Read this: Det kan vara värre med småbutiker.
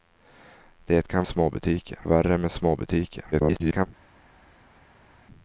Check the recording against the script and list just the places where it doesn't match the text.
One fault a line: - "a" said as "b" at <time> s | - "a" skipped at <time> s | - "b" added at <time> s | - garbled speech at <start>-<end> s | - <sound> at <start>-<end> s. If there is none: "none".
- "vara" said as "småbutiker" at 1.3 s
- garbled speech at 3.3-3.9 s